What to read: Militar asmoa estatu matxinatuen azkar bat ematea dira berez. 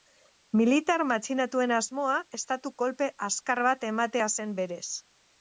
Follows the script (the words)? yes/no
no